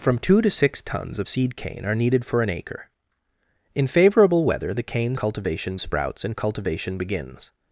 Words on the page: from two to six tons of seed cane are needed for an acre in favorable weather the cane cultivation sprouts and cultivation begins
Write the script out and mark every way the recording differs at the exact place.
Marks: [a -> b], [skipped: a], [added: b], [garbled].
from two to six tons of seed cane are needed for an acre in favorable weather the cane cultivation sprouts and cultivation begins